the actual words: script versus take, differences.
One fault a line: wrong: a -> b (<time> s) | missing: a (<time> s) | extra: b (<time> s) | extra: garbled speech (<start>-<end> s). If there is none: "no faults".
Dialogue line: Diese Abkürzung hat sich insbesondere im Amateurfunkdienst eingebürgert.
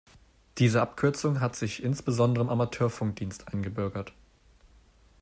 no faults